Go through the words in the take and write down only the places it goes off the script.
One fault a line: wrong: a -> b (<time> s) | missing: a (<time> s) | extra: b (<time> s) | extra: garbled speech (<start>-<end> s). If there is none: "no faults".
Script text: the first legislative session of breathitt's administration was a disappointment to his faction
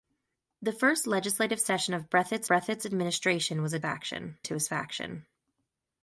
extra: breathitt's (2.5 s)
wrong: disappointment -> faction (3.8 s)